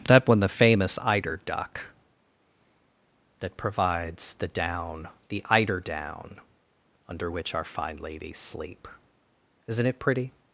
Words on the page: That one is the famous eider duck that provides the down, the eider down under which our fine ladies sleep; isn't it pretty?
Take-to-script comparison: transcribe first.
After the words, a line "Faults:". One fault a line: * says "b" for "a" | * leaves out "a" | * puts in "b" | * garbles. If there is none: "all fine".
That one the famous eider duck that provides the down, the eider down under which our fine ladies sleep; isn't it pretty?
Faults:
* leaves out "is"